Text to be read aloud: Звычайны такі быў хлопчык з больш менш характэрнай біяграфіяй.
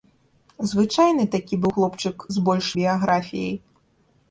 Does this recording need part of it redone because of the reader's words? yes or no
yes